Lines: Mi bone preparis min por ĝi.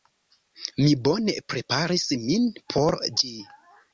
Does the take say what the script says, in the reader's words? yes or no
yes